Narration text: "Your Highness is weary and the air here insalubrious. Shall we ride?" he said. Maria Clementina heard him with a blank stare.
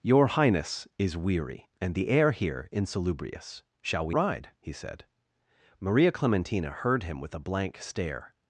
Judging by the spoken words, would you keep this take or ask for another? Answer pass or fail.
pass